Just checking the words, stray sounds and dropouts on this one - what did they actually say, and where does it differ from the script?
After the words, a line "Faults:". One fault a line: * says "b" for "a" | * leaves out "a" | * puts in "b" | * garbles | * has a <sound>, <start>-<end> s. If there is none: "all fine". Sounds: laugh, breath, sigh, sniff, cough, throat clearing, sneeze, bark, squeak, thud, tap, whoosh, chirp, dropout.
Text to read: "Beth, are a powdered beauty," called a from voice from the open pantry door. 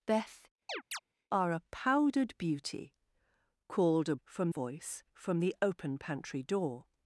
"Beth, are a powdered beauty," called a from voice from the open pantry door.
Faults:
* has a chirp, 0.7-1.0 s